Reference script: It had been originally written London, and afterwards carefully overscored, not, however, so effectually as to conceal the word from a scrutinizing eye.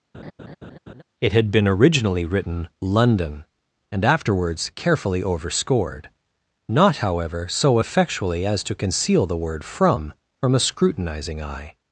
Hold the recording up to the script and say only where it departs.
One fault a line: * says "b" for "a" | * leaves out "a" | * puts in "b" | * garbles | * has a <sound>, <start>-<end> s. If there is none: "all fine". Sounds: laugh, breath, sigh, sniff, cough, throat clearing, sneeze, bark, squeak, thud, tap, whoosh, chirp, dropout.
* has a laugh, 0.1-1.0 s
* puts in "from"